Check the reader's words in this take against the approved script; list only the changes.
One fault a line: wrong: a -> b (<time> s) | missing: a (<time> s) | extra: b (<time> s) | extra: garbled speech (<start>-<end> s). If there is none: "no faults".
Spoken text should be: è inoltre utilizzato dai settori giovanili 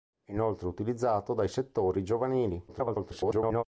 extra: garbled speech (2.7-3.6 s)